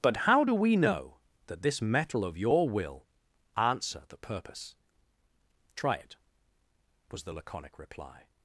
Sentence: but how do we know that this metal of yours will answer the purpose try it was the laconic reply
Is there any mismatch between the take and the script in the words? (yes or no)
yes